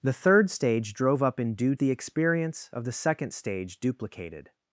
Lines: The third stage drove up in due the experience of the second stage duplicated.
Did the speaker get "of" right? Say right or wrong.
right